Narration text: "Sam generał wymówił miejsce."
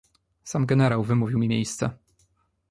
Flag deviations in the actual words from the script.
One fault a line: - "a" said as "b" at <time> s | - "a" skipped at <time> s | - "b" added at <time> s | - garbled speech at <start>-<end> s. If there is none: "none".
- "mi" added at 1.4 s